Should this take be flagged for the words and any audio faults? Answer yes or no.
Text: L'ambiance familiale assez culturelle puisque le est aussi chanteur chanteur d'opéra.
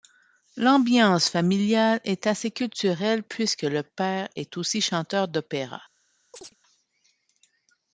yes